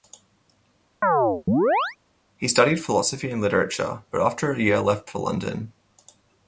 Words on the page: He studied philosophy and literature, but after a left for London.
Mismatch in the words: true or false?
true